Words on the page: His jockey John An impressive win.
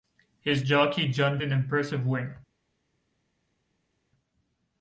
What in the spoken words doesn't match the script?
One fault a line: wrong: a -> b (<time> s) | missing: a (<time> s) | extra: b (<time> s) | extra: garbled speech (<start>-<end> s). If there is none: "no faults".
no faults